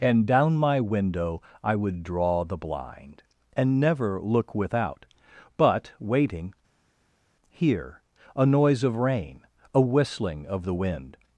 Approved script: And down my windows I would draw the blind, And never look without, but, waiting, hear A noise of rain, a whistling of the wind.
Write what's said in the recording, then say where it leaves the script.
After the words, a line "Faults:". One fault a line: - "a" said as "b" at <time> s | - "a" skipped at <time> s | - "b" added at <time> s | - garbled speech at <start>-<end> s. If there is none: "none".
And down my window I would draw the blind, And never look without, but, waiting, hear A noise of rain, a whistling of the wind.
Faults:
- "windows" said as "window" at 0.8 s